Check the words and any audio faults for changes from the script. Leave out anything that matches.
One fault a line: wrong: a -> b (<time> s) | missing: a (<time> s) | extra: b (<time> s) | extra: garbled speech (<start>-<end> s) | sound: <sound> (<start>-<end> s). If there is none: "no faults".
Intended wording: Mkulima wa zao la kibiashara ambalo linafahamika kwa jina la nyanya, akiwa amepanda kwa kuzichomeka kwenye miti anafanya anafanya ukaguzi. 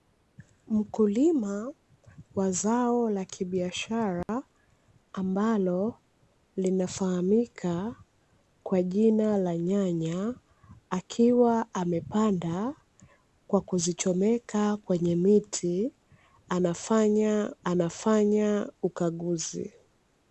sound: dropout (4.2-4.3 s)